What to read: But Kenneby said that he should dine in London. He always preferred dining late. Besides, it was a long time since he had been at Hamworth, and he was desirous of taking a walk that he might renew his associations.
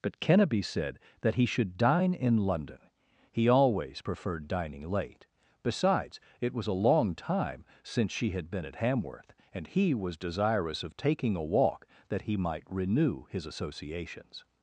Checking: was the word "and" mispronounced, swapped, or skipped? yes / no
no